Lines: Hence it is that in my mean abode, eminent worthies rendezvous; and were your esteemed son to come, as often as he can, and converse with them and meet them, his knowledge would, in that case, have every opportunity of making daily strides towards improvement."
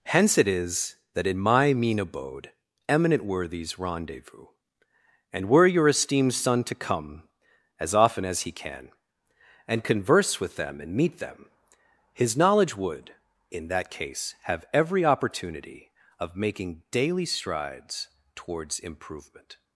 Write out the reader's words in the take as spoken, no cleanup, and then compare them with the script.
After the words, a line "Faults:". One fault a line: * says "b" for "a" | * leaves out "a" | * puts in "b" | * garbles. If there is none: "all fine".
Hence it is that in my mean abode, eminent worthies rendezvous; and were your esteemed son to come, as often as he can, and converse with them and meet them, his knowledge would, in that case, have every opportunity of making daily strides towards improvement."
Faults:
all fine